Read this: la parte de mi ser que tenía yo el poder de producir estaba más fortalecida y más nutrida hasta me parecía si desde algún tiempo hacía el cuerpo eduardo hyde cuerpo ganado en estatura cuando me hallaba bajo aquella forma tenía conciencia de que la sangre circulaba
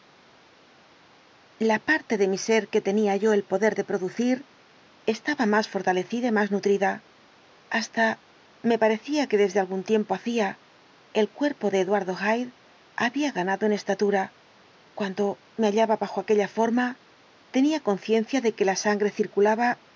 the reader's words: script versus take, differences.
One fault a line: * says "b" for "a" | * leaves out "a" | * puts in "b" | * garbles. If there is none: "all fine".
* says "que" for "si"
* puts in "de"
* says "había" for "cuerpo"